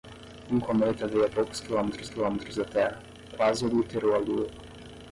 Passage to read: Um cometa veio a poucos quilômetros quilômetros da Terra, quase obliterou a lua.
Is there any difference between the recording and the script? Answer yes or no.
no